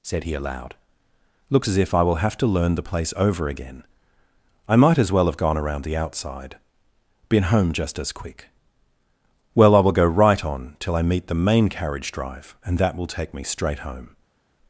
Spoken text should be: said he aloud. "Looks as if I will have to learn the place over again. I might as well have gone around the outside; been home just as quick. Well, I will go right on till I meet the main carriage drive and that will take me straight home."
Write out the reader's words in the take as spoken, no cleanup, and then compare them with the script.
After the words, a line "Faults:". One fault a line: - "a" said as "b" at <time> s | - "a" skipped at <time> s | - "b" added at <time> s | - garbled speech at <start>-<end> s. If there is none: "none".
said he aloud. "Looks as if I will have to learn the place over again. I might as well have gone around the outside; been home just as quick. Well, I will go right on till I meet the main carriage drive and that will take me straight home."
Faults:
none